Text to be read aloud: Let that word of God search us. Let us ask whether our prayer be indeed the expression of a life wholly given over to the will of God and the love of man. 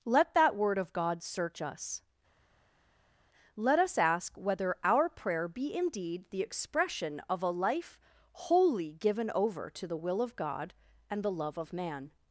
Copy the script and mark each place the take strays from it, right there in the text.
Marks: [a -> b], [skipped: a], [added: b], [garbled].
Let that word of God search us. Let us ask whether our prayer be indeed the expression of a life wholly given over to the will of God and the love of man.